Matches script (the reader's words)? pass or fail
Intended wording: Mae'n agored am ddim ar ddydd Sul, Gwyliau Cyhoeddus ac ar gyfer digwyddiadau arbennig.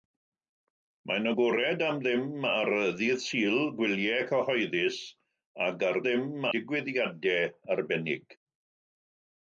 fail